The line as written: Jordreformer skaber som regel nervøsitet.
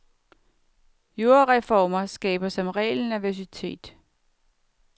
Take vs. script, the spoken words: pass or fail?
pass